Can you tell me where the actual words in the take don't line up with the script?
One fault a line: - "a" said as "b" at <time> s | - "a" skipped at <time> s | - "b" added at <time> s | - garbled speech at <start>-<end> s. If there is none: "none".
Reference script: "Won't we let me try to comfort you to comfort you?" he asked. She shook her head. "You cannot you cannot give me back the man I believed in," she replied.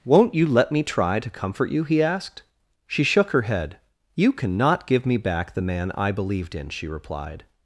- "we" said as "you" at 0.3 s
- "to comfort you" skipped at 1.8 s
- "you cannot" skipped at 4.9 s